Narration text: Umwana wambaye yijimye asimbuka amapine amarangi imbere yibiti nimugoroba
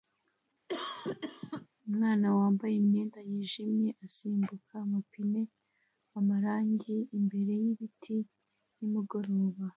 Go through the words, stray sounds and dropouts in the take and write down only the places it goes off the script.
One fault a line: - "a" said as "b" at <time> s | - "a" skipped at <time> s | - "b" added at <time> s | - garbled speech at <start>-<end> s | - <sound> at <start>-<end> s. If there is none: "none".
- cough at 0.7-1.7 s
- "imyenda" added at 2.8 s